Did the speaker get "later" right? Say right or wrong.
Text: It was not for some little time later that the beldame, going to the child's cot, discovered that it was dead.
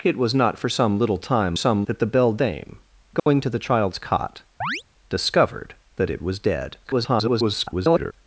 wrong